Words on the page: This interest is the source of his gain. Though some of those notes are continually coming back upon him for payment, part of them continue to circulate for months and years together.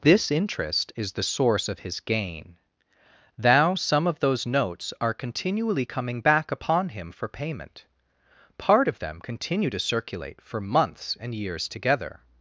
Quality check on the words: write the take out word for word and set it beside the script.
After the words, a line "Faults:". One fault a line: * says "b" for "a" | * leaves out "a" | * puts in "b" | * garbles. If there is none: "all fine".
This interest is the source of his gain. Thou some of those notes are continually coming back upon him for payment, part of them continue to circulate for months and years together.
Faults:
* says "Thou" for "Though"